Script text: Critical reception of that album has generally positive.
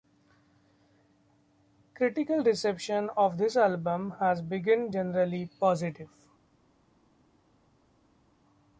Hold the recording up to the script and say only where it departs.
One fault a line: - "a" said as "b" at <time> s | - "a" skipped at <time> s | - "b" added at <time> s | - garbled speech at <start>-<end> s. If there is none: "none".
- "that" said as "this" at 3.4 s
- "been" added at 4.4 s